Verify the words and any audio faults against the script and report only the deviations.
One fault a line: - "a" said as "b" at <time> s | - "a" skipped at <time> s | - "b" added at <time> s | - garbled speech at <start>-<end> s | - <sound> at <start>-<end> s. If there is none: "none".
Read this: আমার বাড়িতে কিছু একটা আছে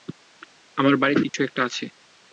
- dropout at 1.3-1.3 s